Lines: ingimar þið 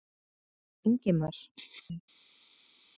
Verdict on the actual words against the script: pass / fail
pass